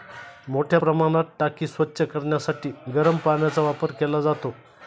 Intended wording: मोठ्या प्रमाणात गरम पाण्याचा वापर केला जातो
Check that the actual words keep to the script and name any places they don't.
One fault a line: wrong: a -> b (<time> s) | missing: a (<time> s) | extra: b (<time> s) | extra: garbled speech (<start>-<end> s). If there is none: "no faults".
extra: टाकी स्वच्छ करण्यासाठी (1.4 s)